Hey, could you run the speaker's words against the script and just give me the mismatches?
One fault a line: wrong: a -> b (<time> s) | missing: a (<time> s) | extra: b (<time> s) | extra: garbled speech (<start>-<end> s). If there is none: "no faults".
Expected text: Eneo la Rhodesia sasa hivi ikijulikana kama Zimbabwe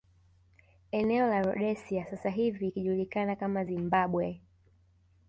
no faults